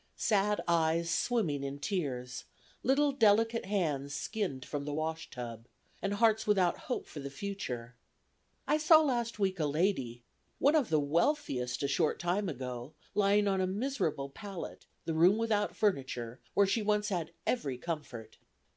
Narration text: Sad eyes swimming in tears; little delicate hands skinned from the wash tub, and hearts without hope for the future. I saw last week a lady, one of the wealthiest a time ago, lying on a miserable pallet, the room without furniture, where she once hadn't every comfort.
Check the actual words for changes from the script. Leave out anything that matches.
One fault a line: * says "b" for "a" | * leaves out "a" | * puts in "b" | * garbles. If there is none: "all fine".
* puts in "short"
* says "had" for "hadn't"